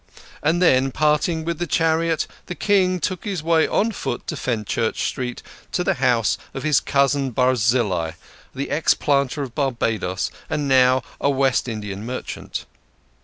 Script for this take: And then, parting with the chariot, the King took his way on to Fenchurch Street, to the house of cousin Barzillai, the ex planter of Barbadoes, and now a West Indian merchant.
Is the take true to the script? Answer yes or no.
no